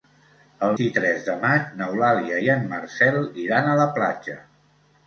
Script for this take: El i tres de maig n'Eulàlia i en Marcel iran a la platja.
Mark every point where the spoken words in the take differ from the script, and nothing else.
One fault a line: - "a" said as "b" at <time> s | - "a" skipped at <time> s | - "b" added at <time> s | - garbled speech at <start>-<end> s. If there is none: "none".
none